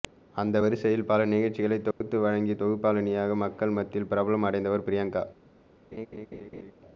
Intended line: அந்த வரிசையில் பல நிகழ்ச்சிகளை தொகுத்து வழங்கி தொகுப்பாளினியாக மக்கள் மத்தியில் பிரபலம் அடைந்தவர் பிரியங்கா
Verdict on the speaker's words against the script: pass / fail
pass